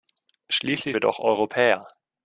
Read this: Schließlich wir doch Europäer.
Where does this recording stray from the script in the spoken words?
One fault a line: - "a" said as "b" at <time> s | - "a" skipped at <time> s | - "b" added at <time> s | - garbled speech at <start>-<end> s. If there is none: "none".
none